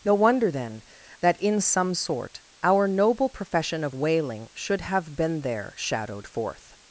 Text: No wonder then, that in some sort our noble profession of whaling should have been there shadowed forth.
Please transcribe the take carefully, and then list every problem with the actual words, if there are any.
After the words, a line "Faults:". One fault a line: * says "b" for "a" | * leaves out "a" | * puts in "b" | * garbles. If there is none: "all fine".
No wonder then, that in some sort our noble profession of whaling should have been there shadowed forth.
Faults:
all fine